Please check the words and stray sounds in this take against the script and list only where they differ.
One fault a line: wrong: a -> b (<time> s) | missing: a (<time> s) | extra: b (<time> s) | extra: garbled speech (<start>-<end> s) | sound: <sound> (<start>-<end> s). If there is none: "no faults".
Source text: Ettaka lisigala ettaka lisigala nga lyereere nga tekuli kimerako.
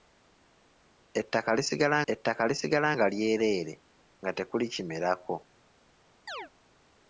sound: chirp (6.3-6.5 s)